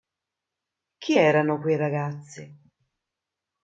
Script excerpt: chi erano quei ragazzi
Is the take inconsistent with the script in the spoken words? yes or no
no